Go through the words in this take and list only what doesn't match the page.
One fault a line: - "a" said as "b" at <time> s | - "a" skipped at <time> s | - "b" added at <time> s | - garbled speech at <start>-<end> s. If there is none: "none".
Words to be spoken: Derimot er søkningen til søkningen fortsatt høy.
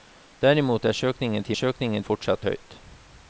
none